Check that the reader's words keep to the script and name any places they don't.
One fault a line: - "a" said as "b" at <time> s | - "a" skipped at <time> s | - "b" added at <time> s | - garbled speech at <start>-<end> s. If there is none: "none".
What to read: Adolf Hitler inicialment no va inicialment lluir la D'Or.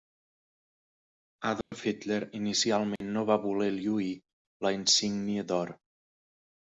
- "inicialment" said as "voler" at 3.5 s
- "Insígnia" added at 4.8 s